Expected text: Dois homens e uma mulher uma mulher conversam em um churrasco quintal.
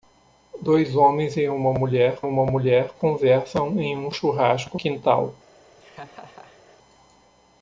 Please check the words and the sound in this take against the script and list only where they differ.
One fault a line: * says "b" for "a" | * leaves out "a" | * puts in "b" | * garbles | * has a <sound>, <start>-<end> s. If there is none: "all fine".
* has a laugh, 5.8-6.8 s